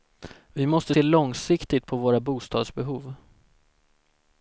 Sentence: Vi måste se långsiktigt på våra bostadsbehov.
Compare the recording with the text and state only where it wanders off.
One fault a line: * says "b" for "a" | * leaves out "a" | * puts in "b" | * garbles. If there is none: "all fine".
all fine